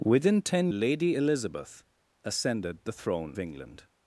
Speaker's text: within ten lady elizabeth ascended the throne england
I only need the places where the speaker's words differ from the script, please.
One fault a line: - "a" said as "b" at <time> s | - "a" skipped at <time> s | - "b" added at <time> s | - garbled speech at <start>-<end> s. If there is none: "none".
none